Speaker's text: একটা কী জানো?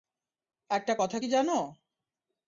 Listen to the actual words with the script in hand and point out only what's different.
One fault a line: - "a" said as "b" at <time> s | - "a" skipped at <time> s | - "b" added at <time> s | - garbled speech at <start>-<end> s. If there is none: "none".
- "কথা" added at 1.0 s